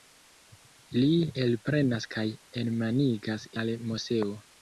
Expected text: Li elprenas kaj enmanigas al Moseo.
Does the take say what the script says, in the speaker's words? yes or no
yes